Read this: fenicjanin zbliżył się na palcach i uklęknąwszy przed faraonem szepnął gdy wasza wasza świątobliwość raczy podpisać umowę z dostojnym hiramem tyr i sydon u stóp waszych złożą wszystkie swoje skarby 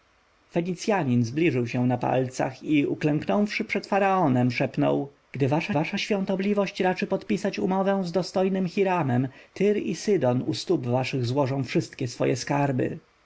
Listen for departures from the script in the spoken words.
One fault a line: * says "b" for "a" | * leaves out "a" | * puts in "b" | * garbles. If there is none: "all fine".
all fine